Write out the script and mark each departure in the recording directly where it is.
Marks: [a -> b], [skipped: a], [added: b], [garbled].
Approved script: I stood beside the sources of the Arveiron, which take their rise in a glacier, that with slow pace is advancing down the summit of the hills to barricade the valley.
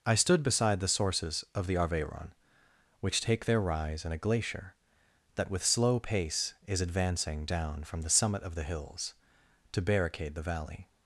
I stood beside the sources of the Arveiron, which take their rise in a glacier, that with slow pace is advancing down [added: from] the summit of the hills to barricade the valley.